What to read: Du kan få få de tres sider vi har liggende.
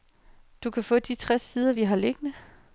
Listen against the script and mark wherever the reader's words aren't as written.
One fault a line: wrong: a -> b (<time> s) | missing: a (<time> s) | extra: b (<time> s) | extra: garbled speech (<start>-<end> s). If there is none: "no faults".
missing: få (1.0 s)